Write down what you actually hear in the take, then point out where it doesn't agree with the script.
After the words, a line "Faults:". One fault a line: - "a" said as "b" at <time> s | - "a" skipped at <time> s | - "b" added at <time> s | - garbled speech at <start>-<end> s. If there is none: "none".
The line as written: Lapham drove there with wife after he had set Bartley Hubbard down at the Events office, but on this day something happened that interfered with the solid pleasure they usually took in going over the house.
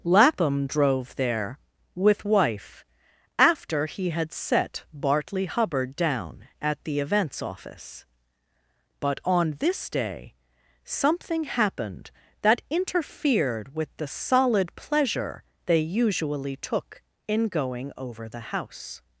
Lapham drove there with wife after he had set Bartley Hubbard down at the Events office, but on this day something happened that interfered with the solid pleasure they usually took in going over the house.
Faults:
none